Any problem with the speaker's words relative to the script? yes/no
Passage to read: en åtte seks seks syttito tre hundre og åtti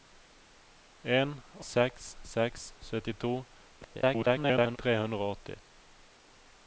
yes